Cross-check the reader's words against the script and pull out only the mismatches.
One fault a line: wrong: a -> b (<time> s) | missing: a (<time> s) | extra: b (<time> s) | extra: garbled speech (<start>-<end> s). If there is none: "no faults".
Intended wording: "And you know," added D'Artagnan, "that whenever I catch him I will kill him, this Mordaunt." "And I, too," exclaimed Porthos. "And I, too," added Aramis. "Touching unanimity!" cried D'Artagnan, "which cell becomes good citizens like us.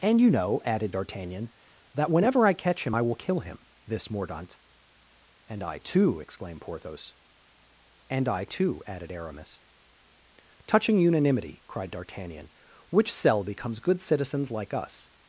no faults